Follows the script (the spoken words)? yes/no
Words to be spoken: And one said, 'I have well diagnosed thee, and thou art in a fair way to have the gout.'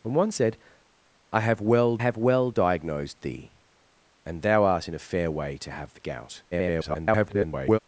no